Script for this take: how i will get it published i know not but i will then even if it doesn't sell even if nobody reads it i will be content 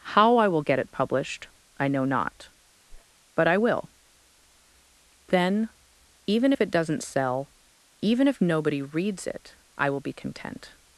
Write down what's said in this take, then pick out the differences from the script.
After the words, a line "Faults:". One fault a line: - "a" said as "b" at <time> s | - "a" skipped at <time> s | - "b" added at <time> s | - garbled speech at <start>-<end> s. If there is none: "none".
how i will get it published i know not but i will then even if it doesn't sell even if nobody reads it i will be content
Faults:
none